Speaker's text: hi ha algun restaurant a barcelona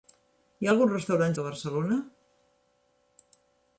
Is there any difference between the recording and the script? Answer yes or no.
no